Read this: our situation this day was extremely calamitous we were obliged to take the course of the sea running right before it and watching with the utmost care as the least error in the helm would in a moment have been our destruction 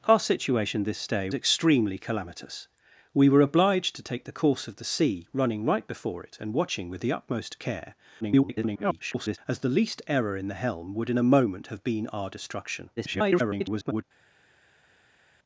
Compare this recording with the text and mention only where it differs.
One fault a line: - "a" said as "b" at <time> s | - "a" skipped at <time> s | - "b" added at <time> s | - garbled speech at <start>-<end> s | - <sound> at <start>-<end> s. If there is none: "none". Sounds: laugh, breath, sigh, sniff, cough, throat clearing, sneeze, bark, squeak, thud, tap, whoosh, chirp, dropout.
- "was" skipped at 1.3 s
- garbled speech at 8.2-9.4 s
- garbled speech at 13.0-14.0 s